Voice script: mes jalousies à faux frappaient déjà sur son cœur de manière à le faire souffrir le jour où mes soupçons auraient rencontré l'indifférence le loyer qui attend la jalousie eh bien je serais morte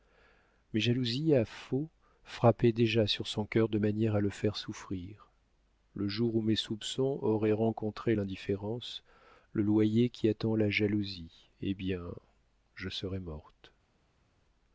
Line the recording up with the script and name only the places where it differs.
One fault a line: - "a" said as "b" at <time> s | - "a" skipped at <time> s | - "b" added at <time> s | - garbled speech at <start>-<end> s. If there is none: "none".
none